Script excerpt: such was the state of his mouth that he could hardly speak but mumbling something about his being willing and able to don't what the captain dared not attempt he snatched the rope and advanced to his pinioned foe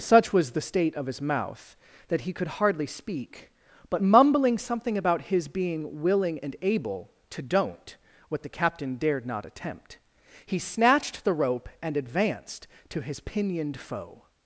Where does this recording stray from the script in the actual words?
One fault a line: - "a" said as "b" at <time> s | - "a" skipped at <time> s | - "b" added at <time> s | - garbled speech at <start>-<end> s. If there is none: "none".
none